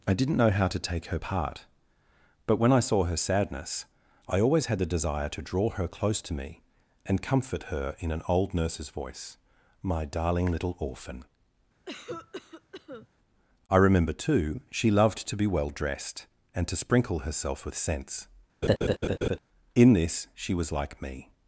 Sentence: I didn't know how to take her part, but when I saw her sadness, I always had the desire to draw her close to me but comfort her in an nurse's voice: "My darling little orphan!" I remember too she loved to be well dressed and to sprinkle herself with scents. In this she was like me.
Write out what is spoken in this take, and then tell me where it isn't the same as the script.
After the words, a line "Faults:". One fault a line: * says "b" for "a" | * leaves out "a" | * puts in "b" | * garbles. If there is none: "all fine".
I didn't know how to take her part, but when I saw her sadness, I always had the desire to draw her close to me and comfort her in an old nurse's voice: "My darling little orphan!" I remember too she loved to be well dressed and to sprinkle herself with scents. In this she was like me.
Faults:
* says "and" for "but"
* puts in "old"